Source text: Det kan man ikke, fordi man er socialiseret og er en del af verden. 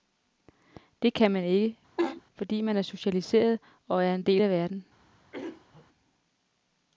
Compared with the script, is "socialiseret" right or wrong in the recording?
right